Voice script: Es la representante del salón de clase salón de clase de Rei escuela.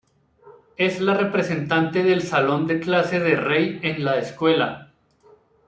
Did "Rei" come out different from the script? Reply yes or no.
yes